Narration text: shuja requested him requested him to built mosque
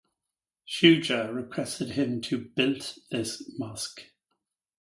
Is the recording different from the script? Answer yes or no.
yes